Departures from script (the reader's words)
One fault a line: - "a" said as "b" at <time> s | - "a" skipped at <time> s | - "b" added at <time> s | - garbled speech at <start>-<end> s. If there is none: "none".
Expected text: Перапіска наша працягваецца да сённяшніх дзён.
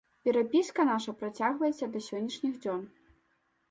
none